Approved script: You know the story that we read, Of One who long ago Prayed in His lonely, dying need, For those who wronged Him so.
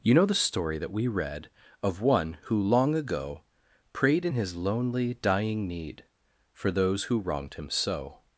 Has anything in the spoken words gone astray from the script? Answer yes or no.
no